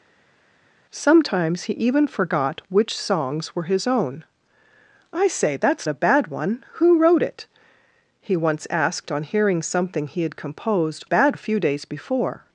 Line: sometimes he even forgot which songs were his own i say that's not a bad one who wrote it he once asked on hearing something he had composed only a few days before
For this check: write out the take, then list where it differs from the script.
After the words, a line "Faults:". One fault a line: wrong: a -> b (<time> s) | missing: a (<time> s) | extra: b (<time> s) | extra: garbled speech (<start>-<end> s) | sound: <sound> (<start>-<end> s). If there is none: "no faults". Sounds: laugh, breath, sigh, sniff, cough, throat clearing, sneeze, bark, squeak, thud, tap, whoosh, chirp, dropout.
sometimes he even forgot which songs were his own i say that's a bad one who wrote it he once asked on hearing something he had composed bad a few days before
Faults:
missing: not (5.9 s)
wrong: only -> bad (11.0 s)